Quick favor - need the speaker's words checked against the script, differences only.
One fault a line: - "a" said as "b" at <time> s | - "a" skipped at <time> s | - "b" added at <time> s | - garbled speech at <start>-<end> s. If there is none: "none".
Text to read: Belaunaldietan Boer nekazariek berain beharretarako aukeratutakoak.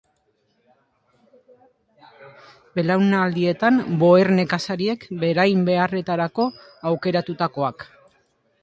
none